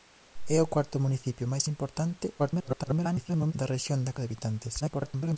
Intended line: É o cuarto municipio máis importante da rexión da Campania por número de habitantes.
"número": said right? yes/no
no